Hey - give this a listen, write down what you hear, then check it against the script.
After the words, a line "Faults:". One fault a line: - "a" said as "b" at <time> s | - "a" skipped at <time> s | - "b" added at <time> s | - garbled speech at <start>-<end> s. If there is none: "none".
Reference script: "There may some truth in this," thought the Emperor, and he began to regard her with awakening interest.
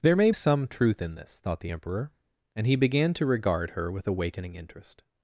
"There may some truth in this," thought the Emperor, and he began to regard her with awakening interest.
Faults:
none